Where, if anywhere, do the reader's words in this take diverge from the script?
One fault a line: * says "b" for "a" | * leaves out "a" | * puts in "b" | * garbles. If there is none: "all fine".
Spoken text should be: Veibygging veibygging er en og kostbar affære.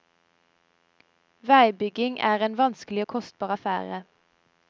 * leaves out "veibygging"
* puts in "vanskelig"